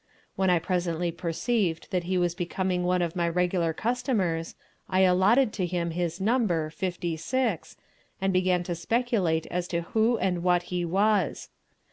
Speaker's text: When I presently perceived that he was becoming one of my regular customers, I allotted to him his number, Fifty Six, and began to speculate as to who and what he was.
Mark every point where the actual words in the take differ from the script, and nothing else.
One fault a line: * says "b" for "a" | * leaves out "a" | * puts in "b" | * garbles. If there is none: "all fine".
all fine